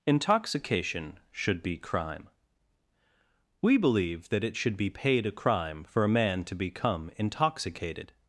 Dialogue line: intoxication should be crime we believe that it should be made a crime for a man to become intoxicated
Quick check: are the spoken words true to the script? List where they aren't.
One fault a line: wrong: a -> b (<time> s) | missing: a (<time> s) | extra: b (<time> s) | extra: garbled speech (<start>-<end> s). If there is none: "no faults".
wrong: made -> paid (4.9 s)